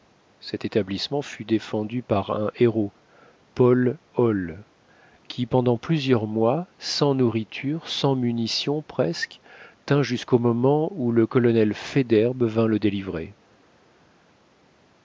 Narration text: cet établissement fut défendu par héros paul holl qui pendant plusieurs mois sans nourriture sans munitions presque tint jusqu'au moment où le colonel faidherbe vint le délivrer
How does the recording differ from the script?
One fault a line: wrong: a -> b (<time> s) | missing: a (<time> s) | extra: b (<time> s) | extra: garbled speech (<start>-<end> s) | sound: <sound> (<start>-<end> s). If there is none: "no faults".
extra: un (2.3 s)